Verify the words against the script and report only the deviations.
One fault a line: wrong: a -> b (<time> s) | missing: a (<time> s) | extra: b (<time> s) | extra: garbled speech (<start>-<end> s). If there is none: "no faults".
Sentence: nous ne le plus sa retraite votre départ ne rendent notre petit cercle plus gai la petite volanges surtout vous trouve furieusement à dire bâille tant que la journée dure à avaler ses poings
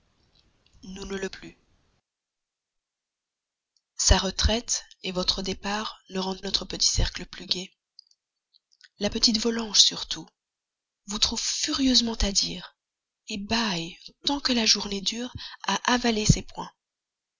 no faults